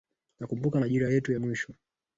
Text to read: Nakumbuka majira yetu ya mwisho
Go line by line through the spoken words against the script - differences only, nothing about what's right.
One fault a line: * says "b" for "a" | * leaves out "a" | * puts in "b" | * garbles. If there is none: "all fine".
all fine